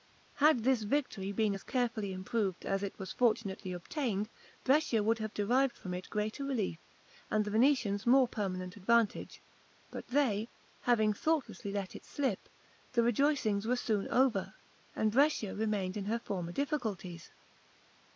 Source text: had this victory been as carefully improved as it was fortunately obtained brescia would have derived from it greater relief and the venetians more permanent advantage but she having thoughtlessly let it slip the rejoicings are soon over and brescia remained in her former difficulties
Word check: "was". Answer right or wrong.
right